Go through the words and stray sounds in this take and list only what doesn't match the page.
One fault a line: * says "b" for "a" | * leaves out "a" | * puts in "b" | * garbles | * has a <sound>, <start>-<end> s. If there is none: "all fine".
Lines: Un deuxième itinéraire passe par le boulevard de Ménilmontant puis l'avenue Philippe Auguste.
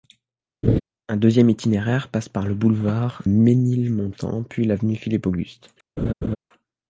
* has a laugh, 0.6-0.8 s
* leaves out "de"
* has a laugh, 6.0-6.4 s